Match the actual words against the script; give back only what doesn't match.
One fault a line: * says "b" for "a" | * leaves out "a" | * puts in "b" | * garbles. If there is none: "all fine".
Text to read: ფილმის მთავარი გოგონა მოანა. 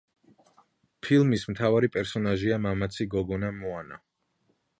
* puts in "პერსონაჟია მამაცი"